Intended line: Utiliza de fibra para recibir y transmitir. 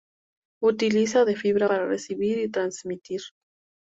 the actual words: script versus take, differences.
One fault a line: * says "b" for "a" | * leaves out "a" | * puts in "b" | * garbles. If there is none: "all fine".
all fine